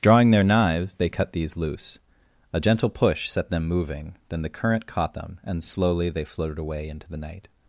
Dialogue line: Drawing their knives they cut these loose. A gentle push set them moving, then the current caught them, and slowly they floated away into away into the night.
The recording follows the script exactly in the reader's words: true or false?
false